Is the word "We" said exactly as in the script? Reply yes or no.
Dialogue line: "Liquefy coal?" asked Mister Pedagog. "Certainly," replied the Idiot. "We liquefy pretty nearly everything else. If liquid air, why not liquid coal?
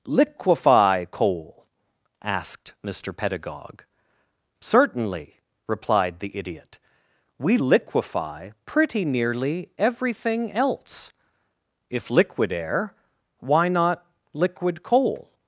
yes